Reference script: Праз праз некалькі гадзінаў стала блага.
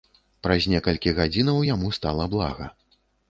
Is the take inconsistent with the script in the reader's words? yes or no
yes